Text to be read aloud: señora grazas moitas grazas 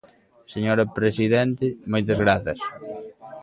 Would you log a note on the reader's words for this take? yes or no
yes